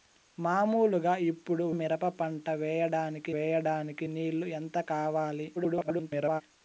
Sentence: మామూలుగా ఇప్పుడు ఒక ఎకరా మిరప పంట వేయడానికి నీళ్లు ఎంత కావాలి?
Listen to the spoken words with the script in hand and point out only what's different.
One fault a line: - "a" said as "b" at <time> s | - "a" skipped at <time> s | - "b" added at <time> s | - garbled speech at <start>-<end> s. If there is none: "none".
- "ఒక ఎకరా" skipped at 1.6 s
- "వేయడానికి" added at 3.3 s
- garbled speech at 5.6-6.4 s